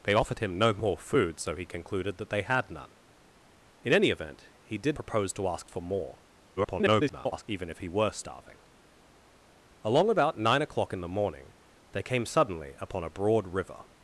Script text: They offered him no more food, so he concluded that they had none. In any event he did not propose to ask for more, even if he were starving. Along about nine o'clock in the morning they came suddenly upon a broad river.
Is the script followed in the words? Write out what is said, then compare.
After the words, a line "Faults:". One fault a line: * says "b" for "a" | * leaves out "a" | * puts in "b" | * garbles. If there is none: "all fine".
They offered him no more food, so he concluded that they had none. In any event he did propose to ask for more, [garbled] even if he were starving. Along about nine o'clock in the morning they came suddenly upon a broad river.
Faults:
* leaves out "not"
* garbles